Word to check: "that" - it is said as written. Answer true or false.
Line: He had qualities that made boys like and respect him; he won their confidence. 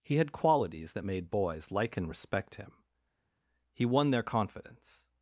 true